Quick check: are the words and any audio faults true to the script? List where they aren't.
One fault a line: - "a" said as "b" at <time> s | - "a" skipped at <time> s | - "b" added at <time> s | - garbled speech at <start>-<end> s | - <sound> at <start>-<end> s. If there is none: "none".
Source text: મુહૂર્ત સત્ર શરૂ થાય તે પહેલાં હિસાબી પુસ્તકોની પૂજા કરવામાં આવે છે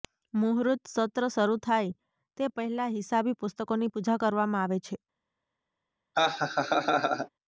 - laugh at 6.1-7.3 s